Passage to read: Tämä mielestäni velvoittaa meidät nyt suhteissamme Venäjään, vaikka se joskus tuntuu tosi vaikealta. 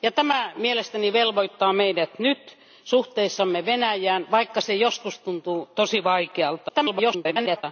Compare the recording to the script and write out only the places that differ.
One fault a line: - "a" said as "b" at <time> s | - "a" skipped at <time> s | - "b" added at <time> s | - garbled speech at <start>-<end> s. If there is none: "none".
- garbled speech at 6.7-7.6 s